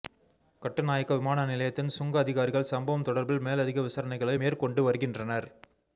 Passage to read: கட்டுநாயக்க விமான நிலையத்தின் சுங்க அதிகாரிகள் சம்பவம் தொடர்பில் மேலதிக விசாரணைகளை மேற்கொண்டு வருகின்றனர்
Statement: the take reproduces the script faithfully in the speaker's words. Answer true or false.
true